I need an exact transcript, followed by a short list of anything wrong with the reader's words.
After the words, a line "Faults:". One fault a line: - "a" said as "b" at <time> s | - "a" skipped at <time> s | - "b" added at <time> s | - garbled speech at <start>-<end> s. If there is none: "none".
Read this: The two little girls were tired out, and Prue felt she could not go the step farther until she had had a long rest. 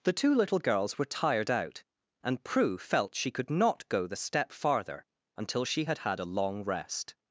The two little girls were tired out, and Prue felt she could not go the step farther until she had had a long rest.
Faults:
none